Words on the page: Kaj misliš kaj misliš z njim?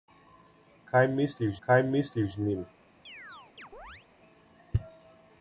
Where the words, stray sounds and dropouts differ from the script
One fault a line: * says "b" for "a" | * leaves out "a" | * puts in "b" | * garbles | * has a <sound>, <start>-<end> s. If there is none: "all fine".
* has a chirp, 3.0-4.1 s